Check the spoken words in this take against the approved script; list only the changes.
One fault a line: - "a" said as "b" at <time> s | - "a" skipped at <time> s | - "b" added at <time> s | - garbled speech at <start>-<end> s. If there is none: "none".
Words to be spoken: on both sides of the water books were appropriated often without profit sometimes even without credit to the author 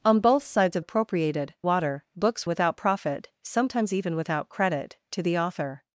- "the" said as "appropriated" at 0.8 s
- "were appropriated often" skipped at 2.5 s